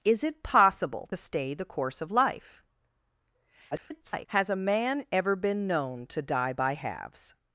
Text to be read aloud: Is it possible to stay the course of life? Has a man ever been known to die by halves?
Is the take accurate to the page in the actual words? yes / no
no